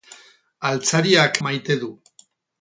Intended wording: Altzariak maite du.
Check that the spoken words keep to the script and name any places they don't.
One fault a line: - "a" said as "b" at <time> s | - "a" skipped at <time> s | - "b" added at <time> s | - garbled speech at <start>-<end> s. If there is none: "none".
none